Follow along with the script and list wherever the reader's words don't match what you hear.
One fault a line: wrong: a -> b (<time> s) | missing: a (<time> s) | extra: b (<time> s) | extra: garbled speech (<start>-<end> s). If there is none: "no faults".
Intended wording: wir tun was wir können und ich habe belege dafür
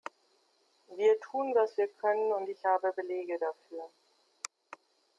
no faults